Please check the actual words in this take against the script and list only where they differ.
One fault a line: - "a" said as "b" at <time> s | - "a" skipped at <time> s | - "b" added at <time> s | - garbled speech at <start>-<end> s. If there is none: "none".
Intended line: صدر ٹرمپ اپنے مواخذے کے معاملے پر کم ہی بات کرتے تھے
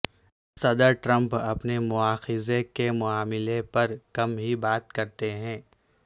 - "تھے" said as "ہیں" at 5.3 s